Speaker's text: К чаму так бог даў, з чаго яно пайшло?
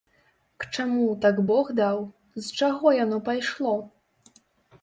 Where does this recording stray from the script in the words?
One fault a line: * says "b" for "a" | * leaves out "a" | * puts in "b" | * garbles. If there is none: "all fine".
all fine